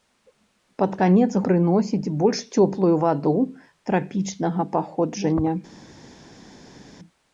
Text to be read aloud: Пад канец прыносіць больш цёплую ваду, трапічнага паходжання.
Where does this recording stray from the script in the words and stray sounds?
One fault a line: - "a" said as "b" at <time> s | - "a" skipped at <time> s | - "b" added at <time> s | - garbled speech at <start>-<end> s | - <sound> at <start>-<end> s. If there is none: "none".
none